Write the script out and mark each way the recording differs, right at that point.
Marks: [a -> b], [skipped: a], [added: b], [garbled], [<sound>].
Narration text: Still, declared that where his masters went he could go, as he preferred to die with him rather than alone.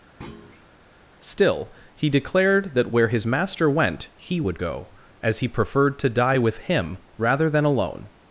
[thud] Still, [added: he] declared that where his [masters -> master] went he [could -> would] go, as he preferred to die with him rather than alone.